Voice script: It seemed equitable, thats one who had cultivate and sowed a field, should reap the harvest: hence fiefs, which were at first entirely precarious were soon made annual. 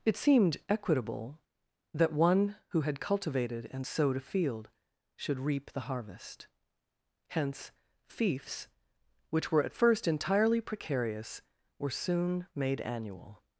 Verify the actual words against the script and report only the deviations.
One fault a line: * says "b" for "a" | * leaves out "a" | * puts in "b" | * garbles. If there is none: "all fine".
* says "that" for "thats"
* says "cultivated" for "cultivate"